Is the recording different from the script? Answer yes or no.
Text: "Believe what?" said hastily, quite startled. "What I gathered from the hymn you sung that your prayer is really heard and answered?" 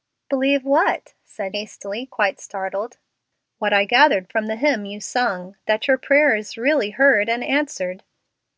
no